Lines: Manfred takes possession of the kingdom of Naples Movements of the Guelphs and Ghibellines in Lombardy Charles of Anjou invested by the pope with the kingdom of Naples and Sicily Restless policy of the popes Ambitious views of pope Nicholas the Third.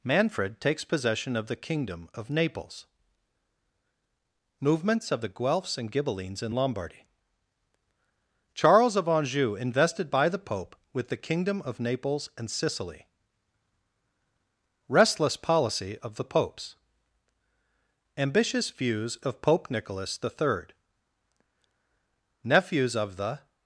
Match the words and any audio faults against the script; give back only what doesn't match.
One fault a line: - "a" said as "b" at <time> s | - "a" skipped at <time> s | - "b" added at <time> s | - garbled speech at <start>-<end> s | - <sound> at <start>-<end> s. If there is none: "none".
- "Nephews of the" added at 22.4 s